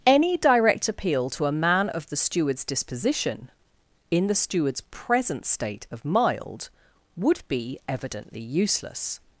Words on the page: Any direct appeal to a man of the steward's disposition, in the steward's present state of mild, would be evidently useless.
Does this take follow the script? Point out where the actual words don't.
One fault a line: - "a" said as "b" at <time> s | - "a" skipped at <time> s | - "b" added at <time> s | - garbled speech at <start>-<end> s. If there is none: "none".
none